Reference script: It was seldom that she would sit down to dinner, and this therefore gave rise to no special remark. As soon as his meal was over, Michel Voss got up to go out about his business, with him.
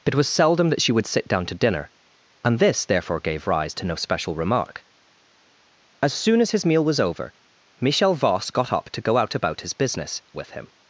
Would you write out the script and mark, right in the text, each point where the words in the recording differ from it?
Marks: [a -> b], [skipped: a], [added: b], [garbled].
It was seldom that she would sit down to dinner, and this therefore gave rise to no special remark. As soon as his meal was over, Michel Voss got up to go out about his business, with him.